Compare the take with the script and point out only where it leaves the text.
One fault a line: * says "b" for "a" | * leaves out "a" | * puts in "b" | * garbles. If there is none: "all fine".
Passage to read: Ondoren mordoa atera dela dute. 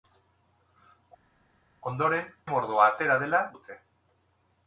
all fine